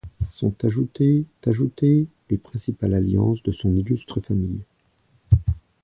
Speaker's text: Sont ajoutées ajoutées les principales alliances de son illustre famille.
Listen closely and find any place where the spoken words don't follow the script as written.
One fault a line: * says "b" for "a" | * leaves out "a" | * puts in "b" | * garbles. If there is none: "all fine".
all fine